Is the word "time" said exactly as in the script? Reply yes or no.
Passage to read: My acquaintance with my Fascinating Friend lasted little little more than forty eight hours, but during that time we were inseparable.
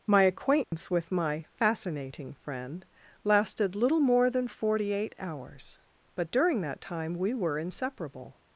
yes